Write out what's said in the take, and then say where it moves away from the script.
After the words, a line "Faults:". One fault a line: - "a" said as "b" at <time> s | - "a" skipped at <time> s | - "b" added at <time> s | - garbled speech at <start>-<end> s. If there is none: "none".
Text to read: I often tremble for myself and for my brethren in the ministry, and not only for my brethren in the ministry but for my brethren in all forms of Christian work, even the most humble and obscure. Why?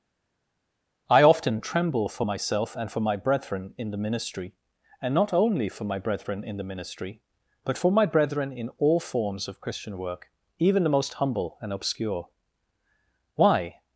I often tremble for myself and for my brethren in the ministry, and not only for my brethren in the ministry but for my brethren in all forms of Christian work, even the most humble and obscure. Why?
Faults:
none